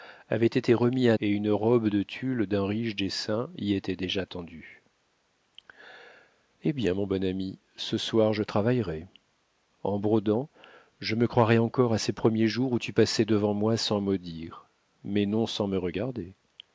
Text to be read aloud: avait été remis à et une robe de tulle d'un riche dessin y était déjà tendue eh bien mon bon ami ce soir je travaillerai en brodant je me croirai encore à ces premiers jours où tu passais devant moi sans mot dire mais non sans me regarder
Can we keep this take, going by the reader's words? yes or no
yes